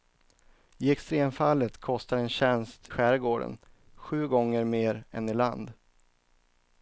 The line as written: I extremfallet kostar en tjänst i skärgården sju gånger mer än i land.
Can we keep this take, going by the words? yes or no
no